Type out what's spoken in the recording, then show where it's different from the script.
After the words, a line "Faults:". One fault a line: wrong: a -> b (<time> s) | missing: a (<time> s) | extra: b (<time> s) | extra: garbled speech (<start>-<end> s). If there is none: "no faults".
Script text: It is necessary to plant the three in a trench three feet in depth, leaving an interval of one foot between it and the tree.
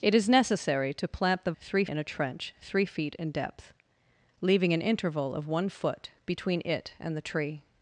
It is necessary to plant the three in a trench three feet in depth, leaving an interval of one foot between it and the tree.
Faults:
no faults